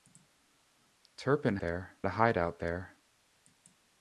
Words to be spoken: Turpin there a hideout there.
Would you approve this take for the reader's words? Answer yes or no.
yes